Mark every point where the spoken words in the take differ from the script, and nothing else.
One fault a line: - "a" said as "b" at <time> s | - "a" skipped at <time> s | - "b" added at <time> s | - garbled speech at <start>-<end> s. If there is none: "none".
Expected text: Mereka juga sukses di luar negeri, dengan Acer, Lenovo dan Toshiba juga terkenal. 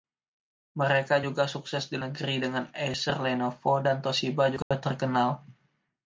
- "luar" skipped at 2.0 s